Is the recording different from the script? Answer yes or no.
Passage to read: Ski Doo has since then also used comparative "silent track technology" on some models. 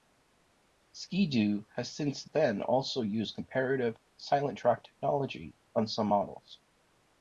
no